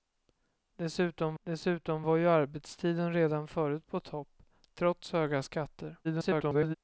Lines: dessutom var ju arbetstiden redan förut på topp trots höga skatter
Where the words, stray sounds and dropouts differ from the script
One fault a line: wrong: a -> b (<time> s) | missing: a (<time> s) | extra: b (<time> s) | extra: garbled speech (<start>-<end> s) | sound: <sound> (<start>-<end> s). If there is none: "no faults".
extra: dessutom (1.4 s)
extra: garbled speech (6.0-6.8 s)